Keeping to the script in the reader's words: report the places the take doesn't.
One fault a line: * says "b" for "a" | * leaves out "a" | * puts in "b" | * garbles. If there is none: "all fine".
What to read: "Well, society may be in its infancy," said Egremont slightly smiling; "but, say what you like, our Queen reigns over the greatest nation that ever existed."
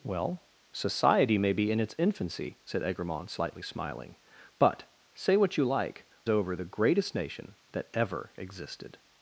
* leaves out "our Queen reigns"